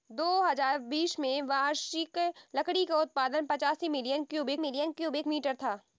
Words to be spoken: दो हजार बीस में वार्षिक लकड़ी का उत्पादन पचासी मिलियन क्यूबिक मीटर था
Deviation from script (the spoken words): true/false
true